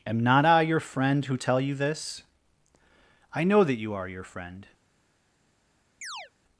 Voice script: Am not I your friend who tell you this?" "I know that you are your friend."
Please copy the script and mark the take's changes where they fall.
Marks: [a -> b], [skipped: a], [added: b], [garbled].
Am not I your friend who tell you this?" "I know that you are your friend."